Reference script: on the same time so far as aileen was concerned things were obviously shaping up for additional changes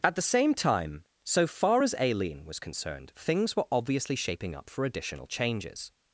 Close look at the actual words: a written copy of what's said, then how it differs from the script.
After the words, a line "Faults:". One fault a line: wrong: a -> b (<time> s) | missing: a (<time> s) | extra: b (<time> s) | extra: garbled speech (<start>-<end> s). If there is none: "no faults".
at the same time so far as aileen was concerned things were obviously shaping up for additional changes
Faults:
wrong: on -> at (0.0 s)